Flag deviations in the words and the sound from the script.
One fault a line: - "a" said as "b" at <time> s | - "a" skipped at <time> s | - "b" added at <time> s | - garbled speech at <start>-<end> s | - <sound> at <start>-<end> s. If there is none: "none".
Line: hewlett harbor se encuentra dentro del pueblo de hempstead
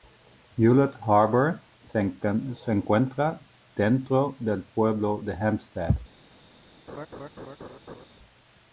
- laugh at 6.9-8.1 s